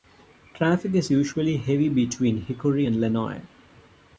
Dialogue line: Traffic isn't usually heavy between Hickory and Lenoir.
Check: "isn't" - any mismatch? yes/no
yes